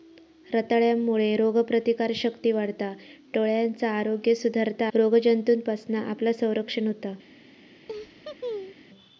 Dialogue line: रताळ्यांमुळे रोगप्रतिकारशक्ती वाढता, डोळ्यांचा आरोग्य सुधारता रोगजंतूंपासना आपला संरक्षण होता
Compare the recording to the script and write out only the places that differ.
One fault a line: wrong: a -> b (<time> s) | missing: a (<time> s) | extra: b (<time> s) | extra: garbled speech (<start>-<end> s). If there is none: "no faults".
no faults